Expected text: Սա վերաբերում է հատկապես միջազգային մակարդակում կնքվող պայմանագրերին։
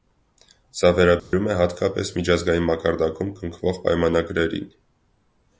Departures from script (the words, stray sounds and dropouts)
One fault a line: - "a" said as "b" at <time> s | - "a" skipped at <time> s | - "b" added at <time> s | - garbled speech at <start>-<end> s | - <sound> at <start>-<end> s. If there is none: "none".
- dropout at 1.2-1.3 s